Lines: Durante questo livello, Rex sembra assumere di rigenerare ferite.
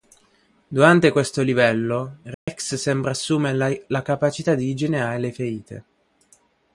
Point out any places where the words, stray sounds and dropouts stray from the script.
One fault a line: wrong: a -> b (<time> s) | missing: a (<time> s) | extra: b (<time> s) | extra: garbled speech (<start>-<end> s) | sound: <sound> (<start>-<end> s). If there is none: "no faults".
sound: dropout (2.3-2.5 s)
extra: la capacità (3.9 s)
extra: le (5.2 s)